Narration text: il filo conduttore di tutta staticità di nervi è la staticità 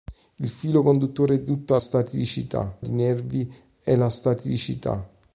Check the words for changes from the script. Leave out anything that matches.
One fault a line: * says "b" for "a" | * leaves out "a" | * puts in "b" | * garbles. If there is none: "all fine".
all fine